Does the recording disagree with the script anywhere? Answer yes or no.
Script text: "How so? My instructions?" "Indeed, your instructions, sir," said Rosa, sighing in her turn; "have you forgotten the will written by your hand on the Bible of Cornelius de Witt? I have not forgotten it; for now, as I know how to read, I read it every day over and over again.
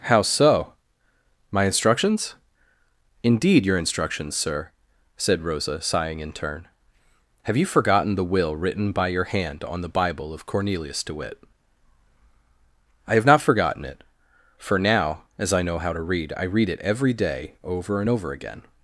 yes